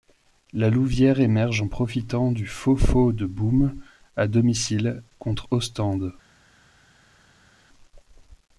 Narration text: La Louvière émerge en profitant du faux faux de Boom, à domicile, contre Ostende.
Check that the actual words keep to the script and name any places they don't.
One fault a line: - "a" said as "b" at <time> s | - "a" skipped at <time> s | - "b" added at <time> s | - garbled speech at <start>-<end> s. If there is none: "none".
none